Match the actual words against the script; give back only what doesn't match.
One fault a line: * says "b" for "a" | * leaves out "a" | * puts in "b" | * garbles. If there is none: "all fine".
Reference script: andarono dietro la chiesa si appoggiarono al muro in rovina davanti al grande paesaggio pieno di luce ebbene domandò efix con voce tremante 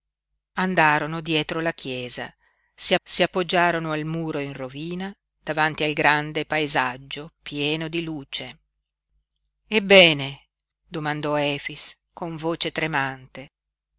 * puts in "si"